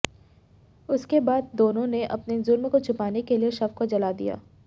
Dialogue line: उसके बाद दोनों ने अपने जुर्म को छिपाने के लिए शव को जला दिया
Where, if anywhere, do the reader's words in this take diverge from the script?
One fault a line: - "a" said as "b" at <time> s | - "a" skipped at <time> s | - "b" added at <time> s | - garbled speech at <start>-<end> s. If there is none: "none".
none